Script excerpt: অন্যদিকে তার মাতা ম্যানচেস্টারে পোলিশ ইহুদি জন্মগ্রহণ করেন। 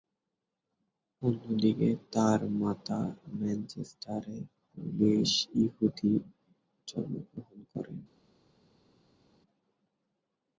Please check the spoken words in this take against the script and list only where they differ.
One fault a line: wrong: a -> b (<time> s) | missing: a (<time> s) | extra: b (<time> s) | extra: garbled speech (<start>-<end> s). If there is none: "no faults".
no faults